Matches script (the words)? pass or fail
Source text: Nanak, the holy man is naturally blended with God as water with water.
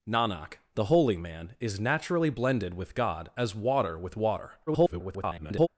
fail